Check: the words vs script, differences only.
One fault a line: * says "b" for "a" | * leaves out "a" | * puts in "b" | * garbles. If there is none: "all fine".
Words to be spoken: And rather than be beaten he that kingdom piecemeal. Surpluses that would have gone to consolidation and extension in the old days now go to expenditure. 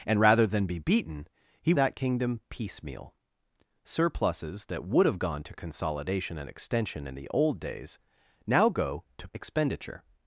all fine